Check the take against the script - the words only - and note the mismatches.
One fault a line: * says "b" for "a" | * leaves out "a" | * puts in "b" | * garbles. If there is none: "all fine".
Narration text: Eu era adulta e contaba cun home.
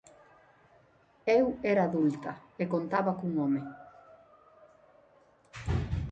all fine